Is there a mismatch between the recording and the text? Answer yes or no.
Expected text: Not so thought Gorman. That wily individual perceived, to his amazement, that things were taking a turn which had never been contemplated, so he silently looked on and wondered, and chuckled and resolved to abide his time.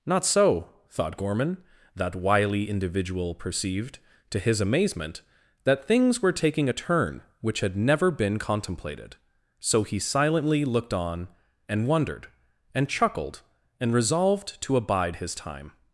no